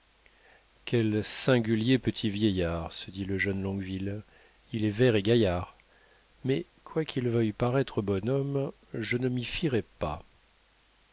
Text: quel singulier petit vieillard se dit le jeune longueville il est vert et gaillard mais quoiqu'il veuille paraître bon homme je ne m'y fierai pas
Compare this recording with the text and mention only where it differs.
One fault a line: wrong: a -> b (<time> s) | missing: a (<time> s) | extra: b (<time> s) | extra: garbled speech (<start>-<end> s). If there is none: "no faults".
no faults